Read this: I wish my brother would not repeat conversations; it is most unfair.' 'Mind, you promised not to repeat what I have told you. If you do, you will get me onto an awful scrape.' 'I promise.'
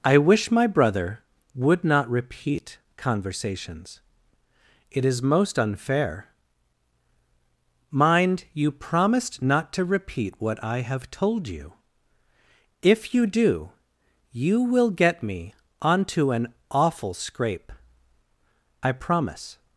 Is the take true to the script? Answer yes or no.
yes